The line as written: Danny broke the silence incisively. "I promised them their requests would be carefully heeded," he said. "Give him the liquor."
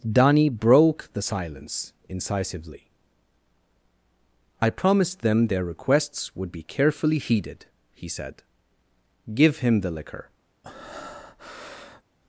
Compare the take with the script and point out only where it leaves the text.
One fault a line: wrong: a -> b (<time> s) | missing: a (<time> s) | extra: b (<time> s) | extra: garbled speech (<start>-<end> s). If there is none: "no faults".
no faults